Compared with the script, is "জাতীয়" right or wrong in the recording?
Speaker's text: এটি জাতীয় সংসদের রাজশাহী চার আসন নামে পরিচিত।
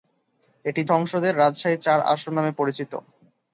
wrong